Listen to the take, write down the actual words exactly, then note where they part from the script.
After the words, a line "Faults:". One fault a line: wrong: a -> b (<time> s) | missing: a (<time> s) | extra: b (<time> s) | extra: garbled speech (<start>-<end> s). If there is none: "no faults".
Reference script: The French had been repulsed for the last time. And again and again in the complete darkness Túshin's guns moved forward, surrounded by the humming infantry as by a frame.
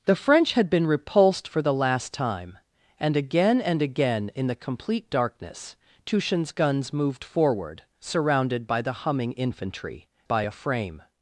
The French had been repulsed for the last time. And again and again in the complete darkness Túshin's guns moved forward, surrounded by the humming infantry by a frame.
Faults:
missing: as (10.1 s)